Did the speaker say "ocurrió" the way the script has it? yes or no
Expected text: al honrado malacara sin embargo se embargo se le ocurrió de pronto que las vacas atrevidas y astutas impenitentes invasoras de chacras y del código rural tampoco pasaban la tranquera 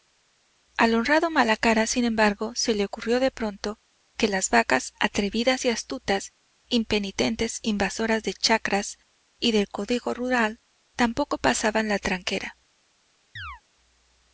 yes